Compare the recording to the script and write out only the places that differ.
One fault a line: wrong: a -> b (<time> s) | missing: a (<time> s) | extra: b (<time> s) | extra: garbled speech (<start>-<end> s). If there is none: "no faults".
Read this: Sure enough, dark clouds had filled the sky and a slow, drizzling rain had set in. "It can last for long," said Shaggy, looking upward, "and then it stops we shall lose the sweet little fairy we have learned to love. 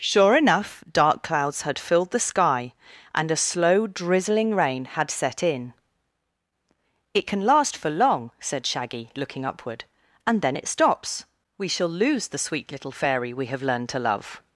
no faults